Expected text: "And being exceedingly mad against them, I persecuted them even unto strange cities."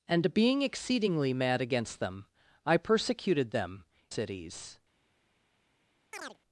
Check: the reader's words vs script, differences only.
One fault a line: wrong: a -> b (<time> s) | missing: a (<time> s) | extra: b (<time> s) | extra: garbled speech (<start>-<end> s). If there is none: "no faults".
missing: even unto strange (3.9 s)